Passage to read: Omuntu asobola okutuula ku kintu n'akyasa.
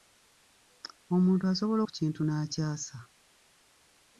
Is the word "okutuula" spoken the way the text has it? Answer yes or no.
no